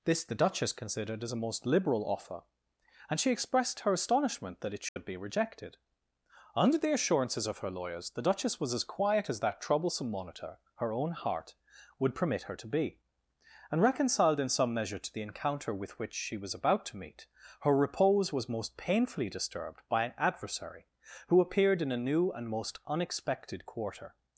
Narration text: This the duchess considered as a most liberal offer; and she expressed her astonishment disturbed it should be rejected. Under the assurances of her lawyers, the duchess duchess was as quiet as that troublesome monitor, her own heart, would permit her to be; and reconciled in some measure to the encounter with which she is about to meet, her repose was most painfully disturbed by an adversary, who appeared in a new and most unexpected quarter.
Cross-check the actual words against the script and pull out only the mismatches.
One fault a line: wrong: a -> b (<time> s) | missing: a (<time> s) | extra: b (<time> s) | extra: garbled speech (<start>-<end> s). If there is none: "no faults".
wrong: disturbed -> that (4.6 s)
missing: duchess (8.6 s)
wrong: is -> was (16.4 s)